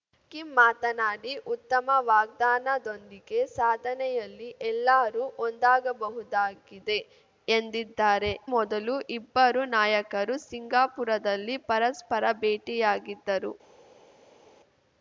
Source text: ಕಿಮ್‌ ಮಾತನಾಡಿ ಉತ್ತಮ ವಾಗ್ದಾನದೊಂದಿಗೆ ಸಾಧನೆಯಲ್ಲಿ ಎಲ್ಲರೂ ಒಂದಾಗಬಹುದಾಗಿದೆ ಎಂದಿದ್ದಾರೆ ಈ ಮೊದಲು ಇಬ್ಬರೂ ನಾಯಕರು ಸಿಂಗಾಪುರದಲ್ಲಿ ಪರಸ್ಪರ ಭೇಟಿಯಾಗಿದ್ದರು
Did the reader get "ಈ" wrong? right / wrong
wrong